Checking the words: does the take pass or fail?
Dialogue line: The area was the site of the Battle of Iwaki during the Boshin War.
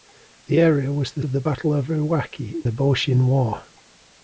fail